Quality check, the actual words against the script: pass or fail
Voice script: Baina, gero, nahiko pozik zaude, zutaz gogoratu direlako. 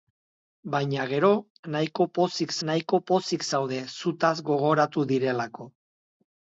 fail